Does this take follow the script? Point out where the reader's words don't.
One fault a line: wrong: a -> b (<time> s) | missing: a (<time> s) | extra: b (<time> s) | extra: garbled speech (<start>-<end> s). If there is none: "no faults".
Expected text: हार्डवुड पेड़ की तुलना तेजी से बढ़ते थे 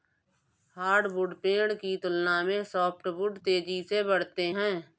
extra: में सॉफ्टवुड (2.4 s)
wrong: थे -> हैं (4.5 s)